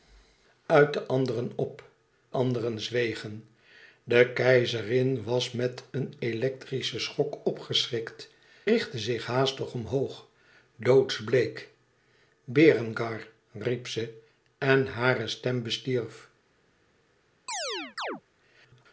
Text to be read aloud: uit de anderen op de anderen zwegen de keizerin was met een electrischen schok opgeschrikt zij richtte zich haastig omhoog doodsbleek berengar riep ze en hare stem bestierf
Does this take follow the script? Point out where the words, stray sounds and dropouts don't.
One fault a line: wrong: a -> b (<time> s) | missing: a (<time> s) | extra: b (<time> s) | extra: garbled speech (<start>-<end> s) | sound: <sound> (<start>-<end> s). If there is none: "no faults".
missing: de (1.8 s)
missing: zij (8.3 s)
sound: chirp (17.5-18.2 s)